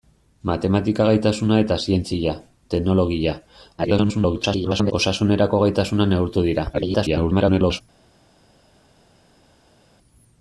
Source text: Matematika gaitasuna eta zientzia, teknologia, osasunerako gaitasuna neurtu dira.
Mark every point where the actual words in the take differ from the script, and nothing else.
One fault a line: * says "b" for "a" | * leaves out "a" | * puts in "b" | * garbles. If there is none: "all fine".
* garbles
* garbles